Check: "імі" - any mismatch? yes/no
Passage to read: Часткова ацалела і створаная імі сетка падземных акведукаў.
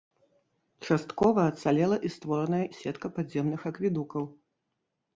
yes